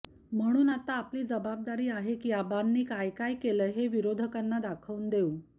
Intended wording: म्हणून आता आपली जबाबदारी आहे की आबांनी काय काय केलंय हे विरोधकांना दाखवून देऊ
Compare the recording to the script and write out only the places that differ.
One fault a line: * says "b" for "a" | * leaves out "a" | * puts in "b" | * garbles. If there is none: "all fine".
all fine